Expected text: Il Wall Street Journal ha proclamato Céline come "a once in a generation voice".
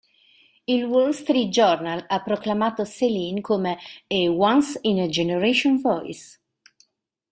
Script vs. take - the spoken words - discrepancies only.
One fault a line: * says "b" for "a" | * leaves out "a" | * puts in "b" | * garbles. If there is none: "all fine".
all fine